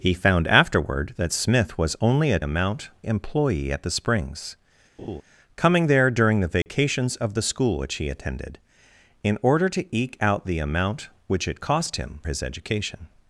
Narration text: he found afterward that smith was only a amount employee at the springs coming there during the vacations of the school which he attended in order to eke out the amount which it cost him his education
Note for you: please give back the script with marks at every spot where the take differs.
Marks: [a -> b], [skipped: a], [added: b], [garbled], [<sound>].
he found afterward that smith was only a amount employee at the springs [laugh] coming there during the vacations [dropout] of the school which he attended in order to eke out the amount which it cost him his education